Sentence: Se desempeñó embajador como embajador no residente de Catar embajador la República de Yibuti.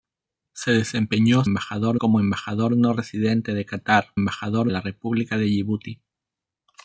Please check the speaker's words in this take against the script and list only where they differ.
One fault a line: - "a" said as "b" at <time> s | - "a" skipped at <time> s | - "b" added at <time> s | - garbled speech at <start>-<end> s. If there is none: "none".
none